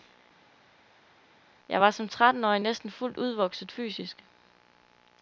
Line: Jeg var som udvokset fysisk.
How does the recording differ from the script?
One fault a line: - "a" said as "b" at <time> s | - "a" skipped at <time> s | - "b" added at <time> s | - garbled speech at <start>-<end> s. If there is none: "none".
- "trettenårig næsten fuldt" added at 2.1 s